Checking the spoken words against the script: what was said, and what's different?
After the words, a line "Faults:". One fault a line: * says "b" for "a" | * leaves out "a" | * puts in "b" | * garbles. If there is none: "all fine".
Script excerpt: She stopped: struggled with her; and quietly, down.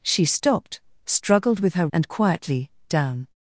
She stopped: struggled with her; and quietly, down.
Faults:
all fine